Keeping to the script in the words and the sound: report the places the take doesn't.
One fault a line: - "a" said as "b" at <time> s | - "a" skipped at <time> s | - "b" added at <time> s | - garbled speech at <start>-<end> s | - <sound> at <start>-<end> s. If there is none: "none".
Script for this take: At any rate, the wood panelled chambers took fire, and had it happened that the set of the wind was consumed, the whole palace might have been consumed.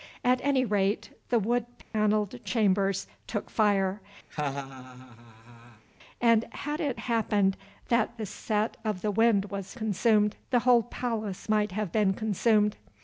- dropout at 1.8-1.9 s
- laugh at 4.3-5.8 s